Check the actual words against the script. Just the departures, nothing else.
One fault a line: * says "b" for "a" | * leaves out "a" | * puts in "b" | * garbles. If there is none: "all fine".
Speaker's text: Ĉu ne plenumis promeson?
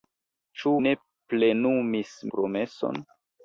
all fine